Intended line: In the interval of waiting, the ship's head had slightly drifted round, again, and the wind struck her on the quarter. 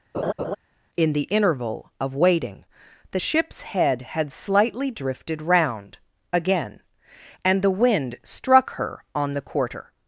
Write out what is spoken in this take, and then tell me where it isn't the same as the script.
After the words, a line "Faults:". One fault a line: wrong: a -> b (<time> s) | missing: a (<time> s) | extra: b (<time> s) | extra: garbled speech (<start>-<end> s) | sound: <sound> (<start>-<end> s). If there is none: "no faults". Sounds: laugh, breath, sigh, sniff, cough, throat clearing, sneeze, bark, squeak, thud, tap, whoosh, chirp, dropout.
In the interval of waiting, the ship's head had slightly drifted round, again, and the wind struck her on the quarter.
Faults:
sound: laugh (0.1-0.6 s)